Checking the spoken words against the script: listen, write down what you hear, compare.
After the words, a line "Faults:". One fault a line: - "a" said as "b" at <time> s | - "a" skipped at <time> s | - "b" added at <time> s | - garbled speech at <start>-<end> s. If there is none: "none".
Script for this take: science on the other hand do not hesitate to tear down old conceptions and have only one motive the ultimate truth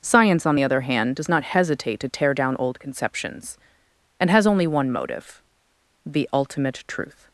science on the other hand does not hesitate to tear down old conceptions and has only one motive the ultimate truth
Faults:
- "do" said as "does" at 1.2 s
- "have" said as "has" at 4.3 s